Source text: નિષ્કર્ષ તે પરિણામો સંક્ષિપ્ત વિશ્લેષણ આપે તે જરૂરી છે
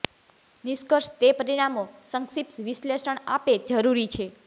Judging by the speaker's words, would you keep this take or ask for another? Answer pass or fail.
fail